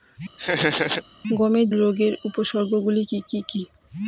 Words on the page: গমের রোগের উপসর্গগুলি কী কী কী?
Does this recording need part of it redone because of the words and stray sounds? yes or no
yes